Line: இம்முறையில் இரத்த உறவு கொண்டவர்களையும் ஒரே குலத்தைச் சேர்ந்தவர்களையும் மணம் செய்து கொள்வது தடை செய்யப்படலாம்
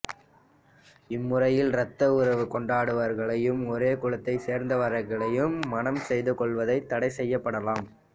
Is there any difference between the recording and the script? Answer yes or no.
no